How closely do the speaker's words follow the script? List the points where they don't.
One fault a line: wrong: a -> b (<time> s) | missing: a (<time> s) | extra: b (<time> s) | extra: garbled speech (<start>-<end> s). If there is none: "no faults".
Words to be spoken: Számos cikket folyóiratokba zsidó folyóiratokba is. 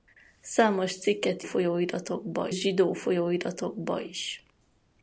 no faults